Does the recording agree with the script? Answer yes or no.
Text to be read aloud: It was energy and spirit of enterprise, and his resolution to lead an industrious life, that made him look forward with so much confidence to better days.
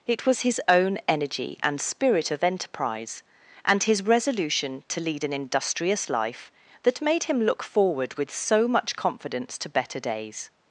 no